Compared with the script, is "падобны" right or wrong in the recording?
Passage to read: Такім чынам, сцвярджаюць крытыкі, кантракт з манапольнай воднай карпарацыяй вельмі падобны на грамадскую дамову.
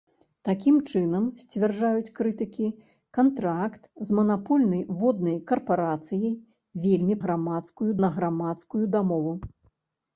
wrong